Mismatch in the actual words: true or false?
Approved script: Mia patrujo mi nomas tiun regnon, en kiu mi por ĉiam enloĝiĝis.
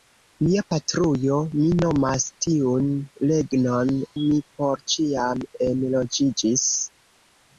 true